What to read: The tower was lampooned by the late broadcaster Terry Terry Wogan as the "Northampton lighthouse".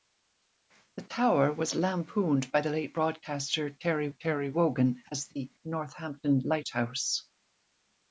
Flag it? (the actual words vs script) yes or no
no